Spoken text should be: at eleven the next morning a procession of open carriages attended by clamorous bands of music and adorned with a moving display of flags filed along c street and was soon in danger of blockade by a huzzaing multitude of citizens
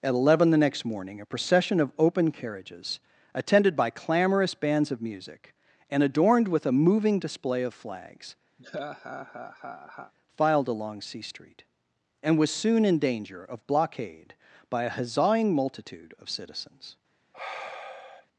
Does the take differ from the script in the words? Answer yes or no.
no